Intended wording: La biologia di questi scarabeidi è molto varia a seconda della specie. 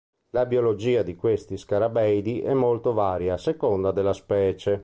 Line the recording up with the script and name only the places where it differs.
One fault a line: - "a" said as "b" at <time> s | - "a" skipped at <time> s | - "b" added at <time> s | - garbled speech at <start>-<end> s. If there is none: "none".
none